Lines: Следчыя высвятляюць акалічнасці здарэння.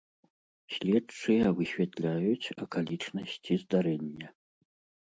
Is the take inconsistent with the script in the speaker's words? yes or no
no